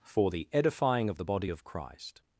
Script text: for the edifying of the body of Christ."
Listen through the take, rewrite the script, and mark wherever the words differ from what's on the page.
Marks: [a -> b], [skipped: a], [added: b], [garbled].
for the edifying of the body of Christ."